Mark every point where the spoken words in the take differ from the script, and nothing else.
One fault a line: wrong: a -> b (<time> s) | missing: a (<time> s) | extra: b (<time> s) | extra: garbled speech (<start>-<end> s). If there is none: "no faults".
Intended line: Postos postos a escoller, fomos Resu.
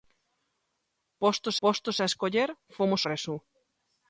no faults